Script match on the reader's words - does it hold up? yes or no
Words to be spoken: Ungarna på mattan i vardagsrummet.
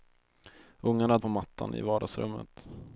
yes